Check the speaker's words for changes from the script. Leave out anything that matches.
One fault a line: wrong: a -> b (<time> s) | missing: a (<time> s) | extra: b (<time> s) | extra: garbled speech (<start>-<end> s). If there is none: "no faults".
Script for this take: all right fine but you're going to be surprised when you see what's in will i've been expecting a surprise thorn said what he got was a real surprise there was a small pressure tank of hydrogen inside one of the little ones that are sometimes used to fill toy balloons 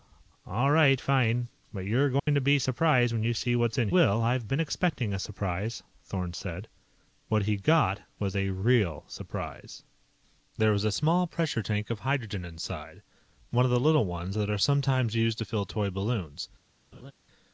no faults